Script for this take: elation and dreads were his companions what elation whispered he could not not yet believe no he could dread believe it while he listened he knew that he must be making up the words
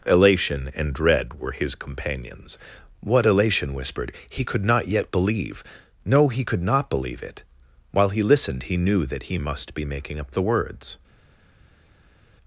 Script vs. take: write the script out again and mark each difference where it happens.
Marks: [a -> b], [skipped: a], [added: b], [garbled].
elation and [dreads -> dread] were his companions what elation whispered he could not [skipped: not] yet believe no he could [dread -> not] believe it while he listened he knew that he must be making up the words